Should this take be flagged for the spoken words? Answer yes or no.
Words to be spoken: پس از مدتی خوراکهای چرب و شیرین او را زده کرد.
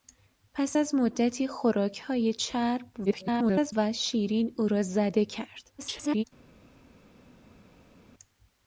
yes